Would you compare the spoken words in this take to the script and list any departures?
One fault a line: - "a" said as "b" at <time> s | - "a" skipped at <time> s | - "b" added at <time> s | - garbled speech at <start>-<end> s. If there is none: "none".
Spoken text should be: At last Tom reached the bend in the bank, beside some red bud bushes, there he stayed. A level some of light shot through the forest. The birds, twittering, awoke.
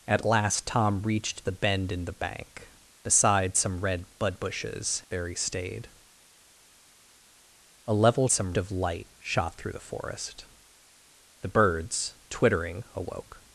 none